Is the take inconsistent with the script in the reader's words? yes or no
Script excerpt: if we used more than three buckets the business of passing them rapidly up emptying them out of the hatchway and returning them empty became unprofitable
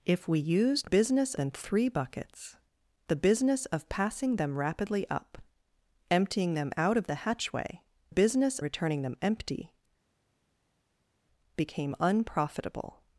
yes